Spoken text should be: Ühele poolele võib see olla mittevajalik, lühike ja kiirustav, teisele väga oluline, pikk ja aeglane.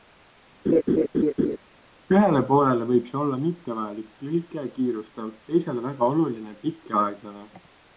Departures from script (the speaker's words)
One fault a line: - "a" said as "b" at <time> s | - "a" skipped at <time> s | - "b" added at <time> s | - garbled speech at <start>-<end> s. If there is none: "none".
none